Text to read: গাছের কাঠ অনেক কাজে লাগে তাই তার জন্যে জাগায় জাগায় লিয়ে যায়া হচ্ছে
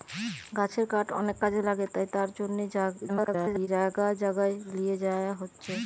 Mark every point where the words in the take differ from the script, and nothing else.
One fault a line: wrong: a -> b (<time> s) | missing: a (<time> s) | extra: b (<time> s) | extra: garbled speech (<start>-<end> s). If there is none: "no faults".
extra: garbled speech (3.1-3.7 s)